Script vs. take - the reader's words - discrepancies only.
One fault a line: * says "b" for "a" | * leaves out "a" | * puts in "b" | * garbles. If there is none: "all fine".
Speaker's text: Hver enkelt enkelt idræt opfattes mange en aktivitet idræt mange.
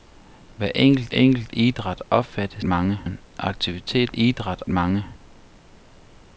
all fine